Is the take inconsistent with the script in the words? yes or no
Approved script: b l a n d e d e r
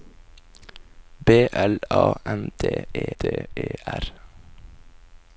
no